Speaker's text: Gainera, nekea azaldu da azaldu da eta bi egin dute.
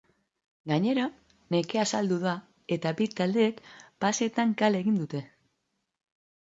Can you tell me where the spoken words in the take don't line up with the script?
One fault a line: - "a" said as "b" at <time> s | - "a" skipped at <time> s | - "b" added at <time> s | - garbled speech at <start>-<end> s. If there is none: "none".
- "azaldu da eta bi" said as "eta bi taldeek paseetan kale" at 2.8 s